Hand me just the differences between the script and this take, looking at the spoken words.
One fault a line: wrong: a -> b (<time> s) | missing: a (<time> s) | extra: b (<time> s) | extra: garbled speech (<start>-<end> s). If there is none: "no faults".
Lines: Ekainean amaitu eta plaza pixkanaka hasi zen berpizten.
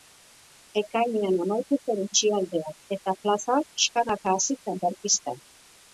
extra: zen itxialdia (1.9 s)